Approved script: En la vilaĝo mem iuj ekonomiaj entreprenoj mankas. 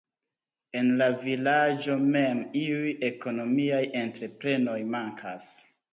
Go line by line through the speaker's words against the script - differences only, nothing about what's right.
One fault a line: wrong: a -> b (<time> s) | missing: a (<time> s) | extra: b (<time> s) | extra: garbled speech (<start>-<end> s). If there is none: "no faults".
no faults